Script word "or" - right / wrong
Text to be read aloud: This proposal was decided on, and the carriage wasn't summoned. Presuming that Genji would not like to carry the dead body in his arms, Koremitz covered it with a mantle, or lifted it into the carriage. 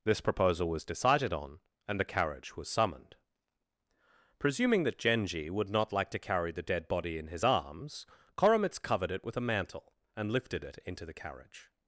wrong